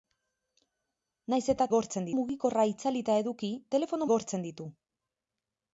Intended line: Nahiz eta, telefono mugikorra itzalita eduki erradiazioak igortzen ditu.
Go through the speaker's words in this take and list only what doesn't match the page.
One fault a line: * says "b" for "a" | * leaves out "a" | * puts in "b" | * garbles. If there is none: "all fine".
* says "igortzen" for "telefono"
* says "telefono" for "erradiazioak"